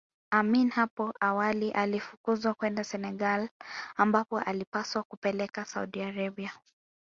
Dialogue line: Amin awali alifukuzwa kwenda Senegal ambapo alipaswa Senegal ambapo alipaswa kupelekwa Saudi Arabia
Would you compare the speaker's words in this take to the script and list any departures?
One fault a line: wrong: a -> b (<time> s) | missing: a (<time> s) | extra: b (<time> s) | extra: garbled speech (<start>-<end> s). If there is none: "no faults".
extra: hapo (0.7 s)
missing: Senegal ambapo alipaswa (5.0 s)